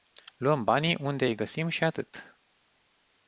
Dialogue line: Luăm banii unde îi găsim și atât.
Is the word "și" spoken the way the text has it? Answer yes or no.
yes